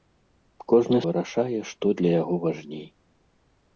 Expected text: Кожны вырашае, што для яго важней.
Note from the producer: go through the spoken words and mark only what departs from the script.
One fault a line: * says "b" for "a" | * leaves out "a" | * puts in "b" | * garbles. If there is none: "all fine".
all fine